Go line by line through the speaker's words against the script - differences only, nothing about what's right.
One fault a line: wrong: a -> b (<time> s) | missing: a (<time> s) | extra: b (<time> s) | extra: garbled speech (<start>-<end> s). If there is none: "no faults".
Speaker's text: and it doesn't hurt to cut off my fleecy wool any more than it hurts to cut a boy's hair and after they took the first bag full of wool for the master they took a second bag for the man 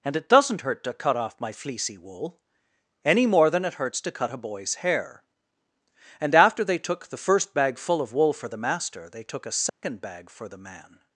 no faults